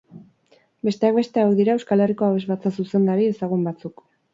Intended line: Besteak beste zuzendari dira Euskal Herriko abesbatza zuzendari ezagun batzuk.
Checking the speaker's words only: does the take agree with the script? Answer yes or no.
no